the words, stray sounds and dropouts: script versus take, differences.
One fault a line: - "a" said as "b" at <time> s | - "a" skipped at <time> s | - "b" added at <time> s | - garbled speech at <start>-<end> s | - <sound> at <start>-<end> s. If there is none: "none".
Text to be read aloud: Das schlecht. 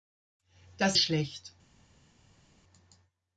none